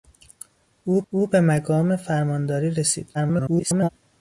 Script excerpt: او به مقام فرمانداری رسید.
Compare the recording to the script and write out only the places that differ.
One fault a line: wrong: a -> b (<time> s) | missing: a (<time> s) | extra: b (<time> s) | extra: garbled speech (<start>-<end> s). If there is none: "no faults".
extra: او (1.1 s)
extra: garbled speech (3.1-3.9 s)